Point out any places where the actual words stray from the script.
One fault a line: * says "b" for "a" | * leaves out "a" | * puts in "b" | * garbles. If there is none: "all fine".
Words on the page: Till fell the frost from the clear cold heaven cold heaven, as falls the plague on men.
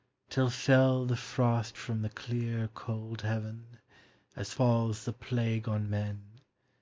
* leaves out "cold heaven"